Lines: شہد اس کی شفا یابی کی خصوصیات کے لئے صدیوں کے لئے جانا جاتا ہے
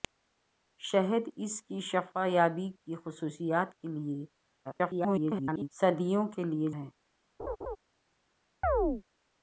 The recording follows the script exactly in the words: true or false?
false